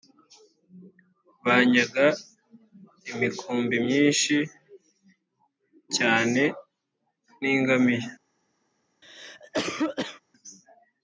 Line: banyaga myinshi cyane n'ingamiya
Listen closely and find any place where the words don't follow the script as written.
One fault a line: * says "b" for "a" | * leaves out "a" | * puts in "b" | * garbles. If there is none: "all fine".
* puts in "imikumbi"